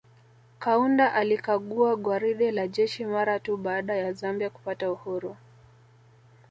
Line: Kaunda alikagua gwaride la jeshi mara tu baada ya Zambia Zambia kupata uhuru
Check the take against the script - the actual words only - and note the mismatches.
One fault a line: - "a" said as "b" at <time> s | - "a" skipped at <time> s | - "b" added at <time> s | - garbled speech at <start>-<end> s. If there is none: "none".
- "Zambia" skipped at 4.5 s